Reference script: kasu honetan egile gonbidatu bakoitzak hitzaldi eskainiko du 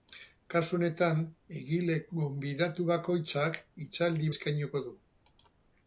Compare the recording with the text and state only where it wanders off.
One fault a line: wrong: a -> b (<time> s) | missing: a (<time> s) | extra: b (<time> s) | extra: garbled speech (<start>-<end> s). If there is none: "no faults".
no faults